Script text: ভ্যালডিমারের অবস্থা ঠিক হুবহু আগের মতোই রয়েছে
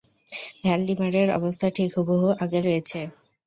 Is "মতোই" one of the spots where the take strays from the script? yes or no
yes